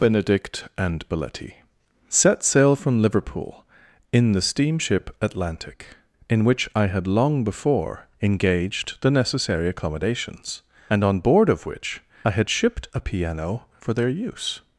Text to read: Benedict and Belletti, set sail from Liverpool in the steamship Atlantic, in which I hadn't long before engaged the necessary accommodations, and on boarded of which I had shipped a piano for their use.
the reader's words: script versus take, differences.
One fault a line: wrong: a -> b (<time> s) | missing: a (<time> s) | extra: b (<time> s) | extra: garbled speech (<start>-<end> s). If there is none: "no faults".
wrong: hadn't -> had (6.9 s)
wrong: boarded -> board (11.2 s)